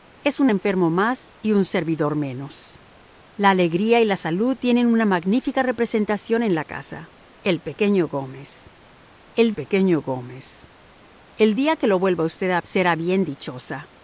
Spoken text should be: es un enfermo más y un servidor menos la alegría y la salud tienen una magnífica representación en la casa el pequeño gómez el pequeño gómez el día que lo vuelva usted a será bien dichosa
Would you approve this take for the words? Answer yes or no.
yes